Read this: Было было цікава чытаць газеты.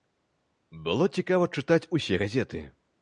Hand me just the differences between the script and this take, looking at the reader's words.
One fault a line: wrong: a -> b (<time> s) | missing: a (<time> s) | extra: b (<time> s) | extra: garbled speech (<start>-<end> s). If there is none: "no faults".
missing: было (1.1 s)
extra: усе (2.0 s)